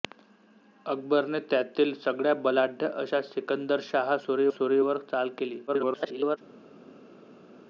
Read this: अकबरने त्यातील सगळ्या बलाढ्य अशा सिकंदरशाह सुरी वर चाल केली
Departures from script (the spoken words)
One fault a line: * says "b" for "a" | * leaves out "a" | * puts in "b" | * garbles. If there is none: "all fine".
* puts in "सुरी"
* garbles